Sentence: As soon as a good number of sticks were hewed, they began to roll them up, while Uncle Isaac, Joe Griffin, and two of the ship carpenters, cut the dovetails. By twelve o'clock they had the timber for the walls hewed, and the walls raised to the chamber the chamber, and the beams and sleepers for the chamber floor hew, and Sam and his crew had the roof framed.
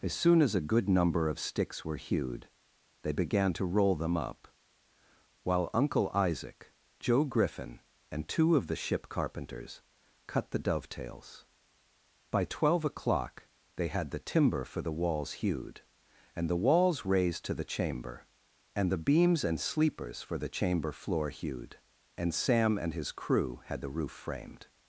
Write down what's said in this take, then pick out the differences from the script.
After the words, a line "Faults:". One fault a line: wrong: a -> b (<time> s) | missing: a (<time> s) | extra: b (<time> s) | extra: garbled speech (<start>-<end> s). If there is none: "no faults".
As soon as a good number of sticks were hewed, they began to roll them up, while Uncle Isaac, Joe Griffin, and two of the ship carpenters, cut the dovetails. By twelve o'clock they had the timber for the walls hewed, and the walls raised to the chamber, and the beams and sleepers for the chamber floor hewed, and Sam and his crew had the roof framed.
Faults:
missing: the chamber (18.2 s)
wrong: hew -> hewed (21.3 s)